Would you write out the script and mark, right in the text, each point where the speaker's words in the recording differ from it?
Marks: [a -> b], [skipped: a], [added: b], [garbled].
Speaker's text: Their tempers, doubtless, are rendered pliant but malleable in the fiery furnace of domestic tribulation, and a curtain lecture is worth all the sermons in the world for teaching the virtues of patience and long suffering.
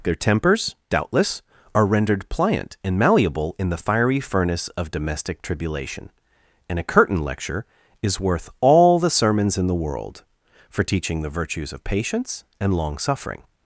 Their tempers, doubtless, are rendered pliant [but -> and] malleable in the fiery furnace of domestic tribulation, and a curtain lecture is worth all the sermons in the world for teaching the virtues of patience and long suffering.